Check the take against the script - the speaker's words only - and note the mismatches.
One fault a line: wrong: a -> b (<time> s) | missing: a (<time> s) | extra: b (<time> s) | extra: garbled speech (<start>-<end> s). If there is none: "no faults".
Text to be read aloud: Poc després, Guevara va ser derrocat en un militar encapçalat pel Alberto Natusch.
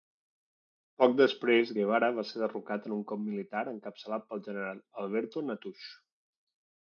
extra: cop (3.1 s)
extra: general (4.5 s)